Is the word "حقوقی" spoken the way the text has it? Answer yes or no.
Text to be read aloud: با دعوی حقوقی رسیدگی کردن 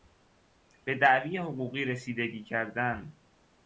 yes